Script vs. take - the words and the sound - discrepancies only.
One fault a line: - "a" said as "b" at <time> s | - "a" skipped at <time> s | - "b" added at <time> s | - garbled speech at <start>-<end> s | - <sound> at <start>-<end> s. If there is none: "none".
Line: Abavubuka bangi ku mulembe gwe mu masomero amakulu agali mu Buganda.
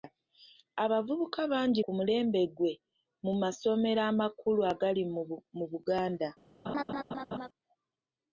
- laugh at 6.6-7.5 s